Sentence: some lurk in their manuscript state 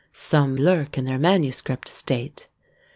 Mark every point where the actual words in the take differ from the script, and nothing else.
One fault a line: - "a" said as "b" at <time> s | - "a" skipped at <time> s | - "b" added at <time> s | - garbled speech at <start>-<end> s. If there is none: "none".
none